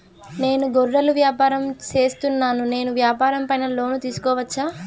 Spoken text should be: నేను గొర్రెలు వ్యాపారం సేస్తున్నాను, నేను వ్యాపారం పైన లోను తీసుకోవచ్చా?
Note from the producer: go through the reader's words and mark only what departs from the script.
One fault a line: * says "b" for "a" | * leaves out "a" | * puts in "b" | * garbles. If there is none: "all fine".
all fine